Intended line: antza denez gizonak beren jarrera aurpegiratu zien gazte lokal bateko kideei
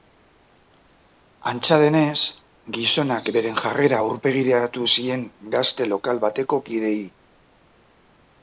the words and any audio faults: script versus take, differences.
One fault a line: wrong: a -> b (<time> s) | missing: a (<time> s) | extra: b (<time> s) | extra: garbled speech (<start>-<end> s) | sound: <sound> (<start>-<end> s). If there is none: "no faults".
no faults